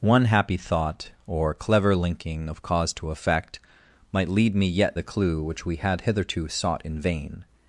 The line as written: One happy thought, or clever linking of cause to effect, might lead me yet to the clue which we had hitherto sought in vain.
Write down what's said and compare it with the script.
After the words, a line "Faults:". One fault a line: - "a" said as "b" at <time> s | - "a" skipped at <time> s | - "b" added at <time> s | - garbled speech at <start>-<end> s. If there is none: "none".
One happy thought, or clever linking of cause to effect, might lead me yet the clue which we had hitherto sought in vain.
Faults:
- "to" skipped at 5.0 s